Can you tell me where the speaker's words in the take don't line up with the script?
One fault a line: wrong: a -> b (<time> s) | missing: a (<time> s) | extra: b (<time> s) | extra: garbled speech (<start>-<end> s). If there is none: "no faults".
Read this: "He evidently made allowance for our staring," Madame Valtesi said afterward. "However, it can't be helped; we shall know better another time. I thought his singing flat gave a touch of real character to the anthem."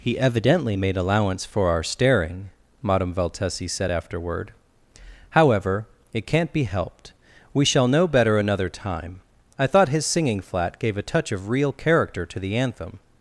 no faults